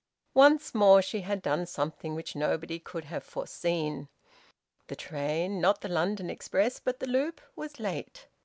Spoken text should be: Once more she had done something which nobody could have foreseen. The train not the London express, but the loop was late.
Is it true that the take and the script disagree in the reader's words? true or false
false